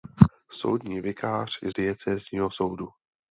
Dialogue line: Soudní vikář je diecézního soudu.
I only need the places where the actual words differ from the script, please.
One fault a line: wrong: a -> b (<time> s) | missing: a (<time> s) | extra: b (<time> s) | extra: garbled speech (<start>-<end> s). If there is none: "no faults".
no faults